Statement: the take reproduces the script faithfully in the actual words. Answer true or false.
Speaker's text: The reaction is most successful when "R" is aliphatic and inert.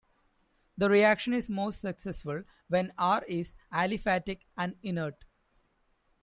true